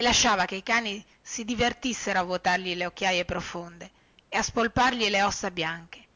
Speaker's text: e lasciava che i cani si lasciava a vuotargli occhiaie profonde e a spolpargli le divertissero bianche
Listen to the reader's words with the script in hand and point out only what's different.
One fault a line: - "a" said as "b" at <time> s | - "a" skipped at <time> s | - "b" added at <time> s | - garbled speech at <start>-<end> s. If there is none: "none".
- "lasciava" said as "divertissero" at 1.4 s
- "le" added at 2.7 s
- "divertissero" said as "ossa" at 5.2 s